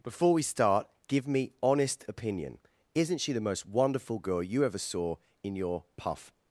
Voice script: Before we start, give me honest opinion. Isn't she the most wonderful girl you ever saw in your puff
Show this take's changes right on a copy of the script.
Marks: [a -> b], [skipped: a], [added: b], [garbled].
Before we start, give me honest opinion. Isn't she the most wonderful girl you ever saw in your puff